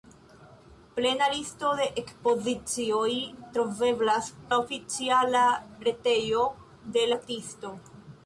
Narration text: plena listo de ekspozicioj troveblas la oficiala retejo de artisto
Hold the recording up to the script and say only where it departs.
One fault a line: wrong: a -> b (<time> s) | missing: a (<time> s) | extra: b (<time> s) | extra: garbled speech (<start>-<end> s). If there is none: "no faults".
no faults